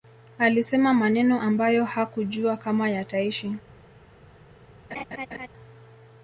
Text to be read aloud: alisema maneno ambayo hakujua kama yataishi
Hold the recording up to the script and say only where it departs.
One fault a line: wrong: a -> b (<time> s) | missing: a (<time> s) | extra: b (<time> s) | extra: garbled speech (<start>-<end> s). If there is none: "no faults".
no faults